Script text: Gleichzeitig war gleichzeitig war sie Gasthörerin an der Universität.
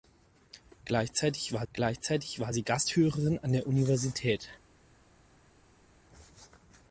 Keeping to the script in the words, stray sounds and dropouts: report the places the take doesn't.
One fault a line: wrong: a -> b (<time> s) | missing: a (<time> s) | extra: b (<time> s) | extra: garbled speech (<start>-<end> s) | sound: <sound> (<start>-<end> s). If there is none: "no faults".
no faults